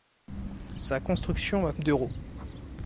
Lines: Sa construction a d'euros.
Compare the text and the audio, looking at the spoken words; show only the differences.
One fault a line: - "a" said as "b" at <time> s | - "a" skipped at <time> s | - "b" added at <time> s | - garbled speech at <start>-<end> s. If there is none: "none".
none